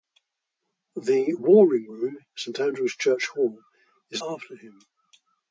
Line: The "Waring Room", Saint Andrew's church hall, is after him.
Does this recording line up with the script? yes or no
yes